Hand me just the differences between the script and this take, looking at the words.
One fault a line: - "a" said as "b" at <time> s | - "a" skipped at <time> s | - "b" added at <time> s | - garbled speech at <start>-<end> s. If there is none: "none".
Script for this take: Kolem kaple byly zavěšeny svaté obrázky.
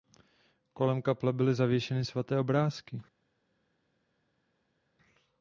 none